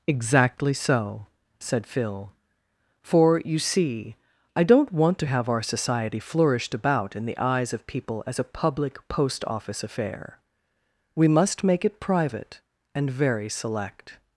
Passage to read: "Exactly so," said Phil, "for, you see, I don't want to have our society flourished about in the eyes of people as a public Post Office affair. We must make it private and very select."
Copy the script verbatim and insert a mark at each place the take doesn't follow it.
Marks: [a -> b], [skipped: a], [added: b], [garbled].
"Exactly so," said Phil, "for, you see, I don't want to have our society flourished about in the eyes of people as a public Post Office affair. We must make it private and very select."